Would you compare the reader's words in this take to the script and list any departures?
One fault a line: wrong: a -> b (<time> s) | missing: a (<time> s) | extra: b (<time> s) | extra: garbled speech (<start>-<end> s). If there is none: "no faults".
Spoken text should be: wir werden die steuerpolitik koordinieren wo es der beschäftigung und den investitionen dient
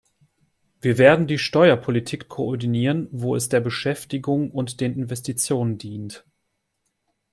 no faults